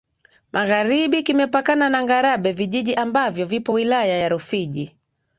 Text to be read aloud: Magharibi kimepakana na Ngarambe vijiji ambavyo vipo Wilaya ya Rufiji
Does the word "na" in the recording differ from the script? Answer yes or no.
no